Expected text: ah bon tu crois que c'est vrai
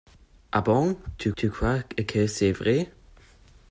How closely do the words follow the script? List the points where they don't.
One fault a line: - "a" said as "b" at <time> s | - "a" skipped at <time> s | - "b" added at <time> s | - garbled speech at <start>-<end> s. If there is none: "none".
- "tu" added at 1.4 s